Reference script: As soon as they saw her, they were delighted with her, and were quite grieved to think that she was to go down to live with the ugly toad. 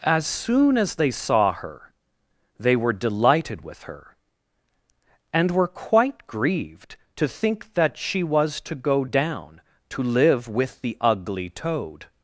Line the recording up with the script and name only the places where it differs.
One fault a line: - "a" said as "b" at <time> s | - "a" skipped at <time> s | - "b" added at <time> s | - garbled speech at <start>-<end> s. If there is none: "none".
none